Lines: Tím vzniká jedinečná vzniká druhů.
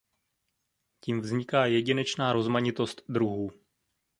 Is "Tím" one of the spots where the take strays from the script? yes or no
no